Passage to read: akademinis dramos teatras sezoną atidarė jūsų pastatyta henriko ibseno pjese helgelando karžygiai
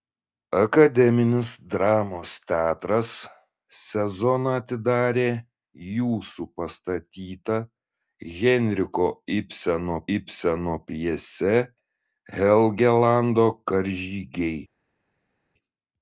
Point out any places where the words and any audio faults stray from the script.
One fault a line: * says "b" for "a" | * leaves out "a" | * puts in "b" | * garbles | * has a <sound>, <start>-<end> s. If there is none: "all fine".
* puts in "ibseno"